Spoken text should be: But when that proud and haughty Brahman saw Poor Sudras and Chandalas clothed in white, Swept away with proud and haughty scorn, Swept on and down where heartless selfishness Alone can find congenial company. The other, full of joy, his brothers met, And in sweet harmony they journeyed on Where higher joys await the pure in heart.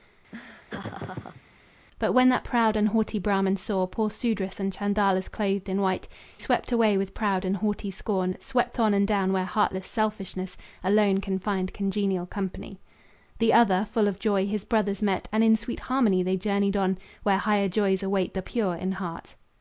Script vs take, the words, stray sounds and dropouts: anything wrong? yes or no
yes